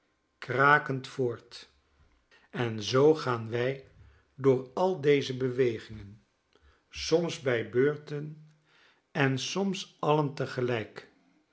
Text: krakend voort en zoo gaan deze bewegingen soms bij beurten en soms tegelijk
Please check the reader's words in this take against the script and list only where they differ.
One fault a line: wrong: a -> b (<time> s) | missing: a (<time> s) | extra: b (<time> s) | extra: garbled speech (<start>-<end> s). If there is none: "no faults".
extra: wij door al (3.5 s)
extra: alien (10.0 s)